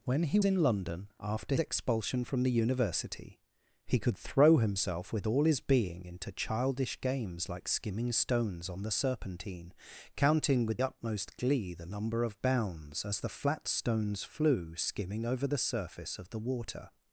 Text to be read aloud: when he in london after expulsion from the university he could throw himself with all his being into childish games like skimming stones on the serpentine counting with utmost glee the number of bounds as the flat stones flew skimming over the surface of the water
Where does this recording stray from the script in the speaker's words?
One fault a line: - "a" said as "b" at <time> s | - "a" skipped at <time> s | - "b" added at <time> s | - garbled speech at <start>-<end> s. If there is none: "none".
none